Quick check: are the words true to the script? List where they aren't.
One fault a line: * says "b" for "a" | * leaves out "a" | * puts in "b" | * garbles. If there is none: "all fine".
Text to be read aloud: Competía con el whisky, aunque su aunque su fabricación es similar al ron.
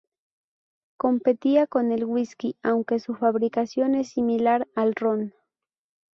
* leaves out "aunque su"